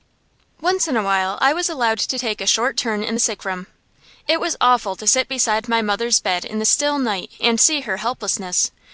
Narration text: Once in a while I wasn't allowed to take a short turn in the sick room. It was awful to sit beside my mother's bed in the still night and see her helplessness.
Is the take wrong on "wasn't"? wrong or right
wrong